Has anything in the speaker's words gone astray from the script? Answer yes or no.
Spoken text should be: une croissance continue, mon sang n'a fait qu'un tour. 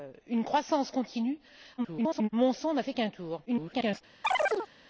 yes